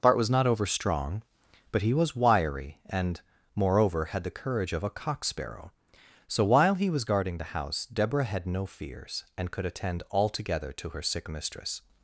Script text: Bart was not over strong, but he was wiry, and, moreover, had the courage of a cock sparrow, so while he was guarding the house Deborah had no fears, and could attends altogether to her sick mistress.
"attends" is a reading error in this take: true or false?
true